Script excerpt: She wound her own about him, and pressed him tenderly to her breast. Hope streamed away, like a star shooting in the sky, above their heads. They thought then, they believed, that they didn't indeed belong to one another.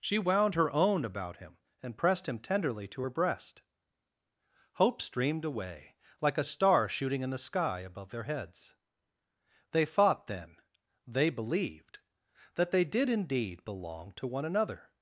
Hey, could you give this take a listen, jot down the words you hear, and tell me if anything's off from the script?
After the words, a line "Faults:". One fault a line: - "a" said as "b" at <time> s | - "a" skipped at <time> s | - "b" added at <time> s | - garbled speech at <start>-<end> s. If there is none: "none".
She wound her own about him, and pressed him tenderly to her breast. Hope streamed away, like a star shooting in the sky, above their heads. They thought then, they believed, that they did indeed belong to one another.
Faults:
- "didn't" said as "did" at 12.8 s